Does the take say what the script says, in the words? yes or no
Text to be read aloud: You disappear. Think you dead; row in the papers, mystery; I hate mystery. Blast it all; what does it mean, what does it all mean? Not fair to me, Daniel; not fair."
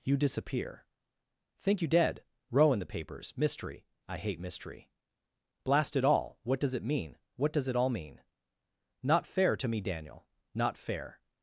yes